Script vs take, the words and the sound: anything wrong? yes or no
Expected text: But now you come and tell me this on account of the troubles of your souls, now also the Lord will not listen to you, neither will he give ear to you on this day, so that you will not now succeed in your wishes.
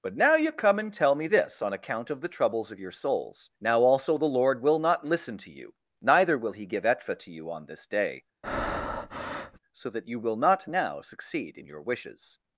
yes